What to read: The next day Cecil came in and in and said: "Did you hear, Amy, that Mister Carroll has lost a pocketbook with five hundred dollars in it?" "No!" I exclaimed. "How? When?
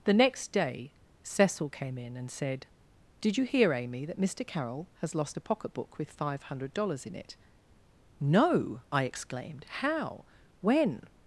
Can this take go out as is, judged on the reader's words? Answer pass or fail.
fail